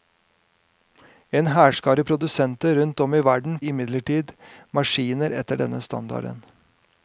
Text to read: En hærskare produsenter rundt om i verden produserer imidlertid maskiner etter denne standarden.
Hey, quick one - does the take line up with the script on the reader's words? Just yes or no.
no